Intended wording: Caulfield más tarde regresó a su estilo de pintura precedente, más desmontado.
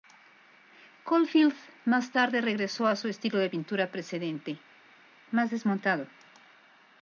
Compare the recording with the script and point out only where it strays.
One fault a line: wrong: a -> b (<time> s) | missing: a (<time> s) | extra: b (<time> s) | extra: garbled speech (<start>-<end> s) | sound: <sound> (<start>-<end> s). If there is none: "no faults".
no faults